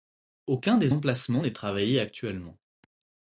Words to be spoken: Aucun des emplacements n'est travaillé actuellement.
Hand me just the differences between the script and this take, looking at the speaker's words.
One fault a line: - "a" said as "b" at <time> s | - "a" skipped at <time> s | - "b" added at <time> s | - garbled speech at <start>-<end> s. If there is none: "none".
none